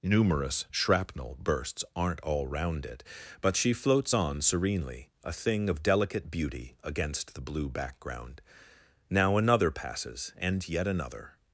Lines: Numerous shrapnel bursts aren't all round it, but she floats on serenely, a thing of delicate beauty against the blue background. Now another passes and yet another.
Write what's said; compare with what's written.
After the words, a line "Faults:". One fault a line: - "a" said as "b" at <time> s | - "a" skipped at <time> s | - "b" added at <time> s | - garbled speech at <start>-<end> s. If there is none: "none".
Numerous shrapnel bursts aren't all round it, but she floats on serenely, a thing of delicate beauty against the blue background. Now another passes and yet another.
Faults:
none